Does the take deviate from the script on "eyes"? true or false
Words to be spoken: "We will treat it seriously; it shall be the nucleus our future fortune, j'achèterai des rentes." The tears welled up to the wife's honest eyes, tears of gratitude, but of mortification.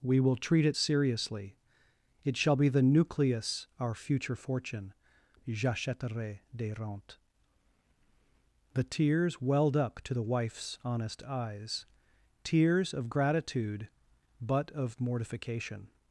false